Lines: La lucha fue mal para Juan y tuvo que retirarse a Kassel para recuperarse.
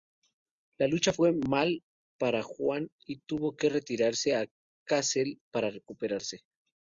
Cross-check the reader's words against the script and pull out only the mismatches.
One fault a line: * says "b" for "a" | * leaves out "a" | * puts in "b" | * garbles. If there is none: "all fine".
all fine